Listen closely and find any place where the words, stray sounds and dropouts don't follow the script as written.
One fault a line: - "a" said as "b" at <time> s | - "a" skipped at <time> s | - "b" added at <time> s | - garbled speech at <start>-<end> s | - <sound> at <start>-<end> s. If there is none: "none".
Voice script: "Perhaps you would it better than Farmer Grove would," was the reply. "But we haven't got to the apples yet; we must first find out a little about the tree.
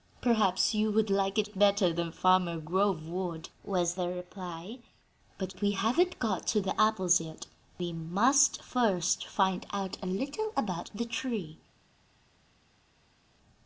- "like" added at 1.1 s